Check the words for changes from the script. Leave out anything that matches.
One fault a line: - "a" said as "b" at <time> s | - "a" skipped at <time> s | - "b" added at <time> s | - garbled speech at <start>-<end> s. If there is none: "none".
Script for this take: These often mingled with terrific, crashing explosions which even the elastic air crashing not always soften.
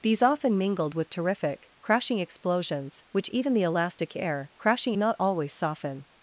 none